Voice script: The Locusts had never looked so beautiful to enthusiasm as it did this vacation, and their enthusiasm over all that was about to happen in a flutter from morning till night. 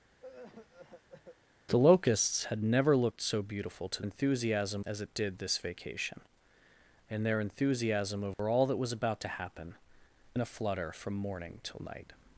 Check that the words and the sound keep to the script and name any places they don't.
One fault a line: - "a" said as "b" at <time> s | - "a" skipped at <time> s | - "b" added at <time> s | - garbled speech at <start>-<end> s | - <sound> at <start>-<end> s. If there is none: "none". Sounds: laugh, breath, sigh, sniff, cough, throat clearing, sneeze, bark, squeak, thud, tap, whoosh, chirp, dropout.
- cough at 0.2-1.4 s
- dropout at 8.3-8.4 s